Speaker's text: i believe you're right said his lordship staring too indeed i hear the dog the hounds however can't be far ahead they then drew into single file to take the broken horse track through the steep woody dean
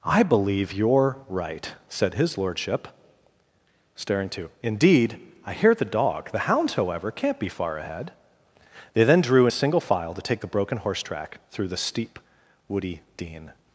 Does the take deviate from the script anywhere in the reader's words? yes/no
yes